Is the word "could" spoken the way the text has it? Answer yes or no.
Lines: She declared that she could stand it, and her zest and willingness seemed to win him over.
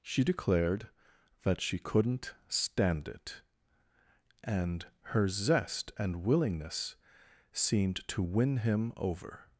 no